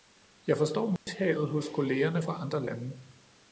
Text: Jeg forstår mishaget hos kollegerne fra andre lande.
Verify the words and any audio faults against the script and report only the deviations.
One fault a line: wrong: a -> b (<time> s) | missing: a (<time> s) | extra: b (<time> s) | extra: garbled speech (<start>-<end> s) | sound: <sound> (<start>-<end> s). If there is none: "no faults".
sound: dropout (1.0-1.1 s)